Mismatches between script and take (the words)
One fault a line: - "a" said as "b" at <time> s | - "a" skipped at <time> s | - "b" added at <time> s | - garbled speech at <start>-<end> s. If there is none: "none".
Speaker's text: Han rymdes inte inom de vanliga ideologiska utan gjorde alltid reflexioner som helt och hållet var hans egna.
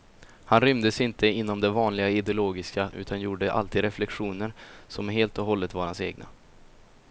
none